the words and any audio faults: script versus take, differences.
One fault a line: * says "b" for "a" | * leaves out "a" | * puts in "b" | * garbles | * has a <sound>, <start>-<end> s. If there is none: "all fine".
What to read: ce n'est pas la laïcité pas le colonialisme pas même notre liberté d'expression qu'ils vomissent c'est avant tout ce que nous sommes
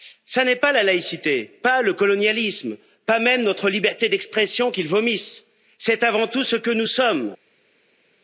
all fine